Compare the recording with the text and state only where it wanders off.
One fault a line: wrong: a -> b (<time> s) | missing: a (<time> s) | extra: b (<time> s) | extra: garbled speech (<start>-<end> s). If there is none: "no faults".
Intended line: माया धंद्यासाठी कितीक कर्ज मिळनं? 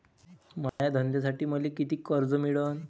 extra: मले (1.4 s)